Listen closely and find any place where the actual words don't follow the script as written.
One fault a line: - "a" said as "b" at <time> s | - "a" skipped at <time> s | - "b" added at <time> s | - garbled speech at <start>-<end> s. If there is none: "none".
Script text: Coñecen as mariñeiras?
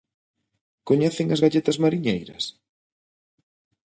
- "galletas" added at 1.4 s